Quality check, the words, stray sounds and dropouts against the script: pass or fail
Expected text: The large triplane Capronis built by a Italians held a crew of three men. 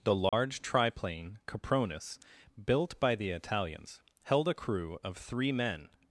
fail